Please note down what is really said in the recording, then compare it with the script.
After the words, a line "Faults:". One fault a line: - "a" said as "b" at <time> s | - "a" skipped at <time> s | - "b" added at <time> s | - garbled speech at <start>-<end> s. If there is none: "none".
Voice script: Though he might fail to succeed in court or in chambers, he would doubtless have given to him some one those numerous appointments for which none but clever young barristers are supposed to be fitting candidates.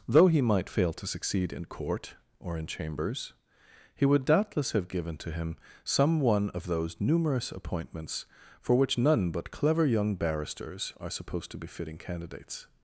Though he might fail to succeed in court or in chambers, he would doubtless have given to him some one of those numerous appointments for which none but clever young barristers are supposed to be fitting candidates.
Faults:
- "of" added at 6.5 s